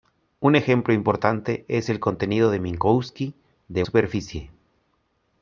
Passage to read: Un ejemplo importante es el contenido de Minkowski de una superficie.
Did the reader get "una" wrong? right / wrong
wrong